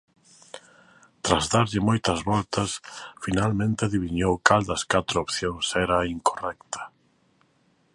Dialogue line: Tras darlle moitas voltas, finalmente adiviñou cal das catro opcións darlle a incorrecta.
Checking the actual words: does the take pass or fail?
fail